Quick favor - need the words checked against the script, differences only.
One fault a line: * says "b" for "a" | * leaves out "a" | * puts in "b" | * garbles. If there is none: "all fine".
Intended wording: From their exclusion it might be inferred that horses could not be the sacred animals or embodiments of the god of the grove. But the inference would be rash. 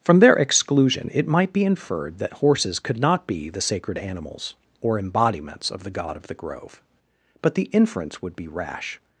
all fine